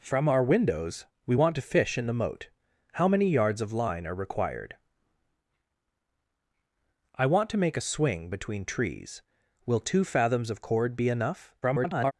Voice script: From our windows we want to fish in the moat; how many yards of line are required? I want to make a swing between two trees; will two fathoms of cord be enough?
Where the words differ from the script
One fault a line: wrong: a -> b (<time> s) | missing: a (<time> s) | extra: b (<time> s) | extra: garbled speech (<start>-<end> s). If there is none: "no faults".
missing: two (8.6 s)
extra: garbled speech (11.6-12.1 s)